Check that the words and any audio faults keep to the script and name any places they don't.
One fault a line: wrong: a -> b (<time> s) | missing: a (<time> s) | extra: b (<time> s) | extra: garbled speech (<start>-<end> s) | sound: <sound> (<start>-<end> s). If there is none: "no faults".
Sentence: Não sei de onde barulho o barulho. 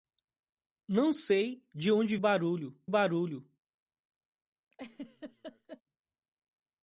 sound: laugh (4.7-5.8 s)